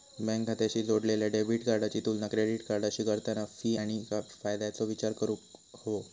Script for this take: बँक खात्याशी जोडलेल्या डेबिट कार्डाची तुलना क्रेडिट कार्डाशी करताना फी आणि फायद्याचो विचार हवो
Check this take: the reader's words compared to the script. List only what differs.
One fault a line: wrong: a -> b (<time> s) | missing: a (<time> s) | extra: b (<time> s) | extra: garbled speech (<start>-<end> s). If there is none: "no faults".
extra: करूक (5.2 s)